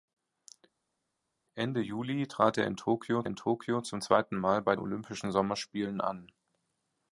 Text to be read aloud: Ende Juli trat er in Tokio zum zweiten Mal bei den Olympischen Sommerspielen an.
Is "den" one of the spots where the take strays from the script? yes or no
yes